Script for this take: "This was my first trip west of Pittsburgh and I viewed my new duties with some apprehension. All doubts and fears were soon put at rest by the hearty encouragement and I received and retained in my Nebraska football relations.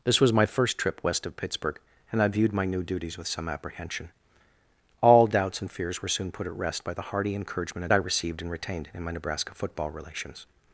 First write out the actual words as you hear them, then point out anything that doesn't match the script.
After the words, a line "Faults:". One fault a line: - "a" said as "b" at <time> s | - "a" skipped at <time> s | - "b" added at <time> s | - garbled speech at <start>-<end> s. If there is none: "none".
"This was my first trip west of Pittsburgh and I viewed my new duties with some apprehension. All doubts and fears were soon put at rest by the hearty encouragement and I received and retained in my Nebraska football relations.
Faults:
none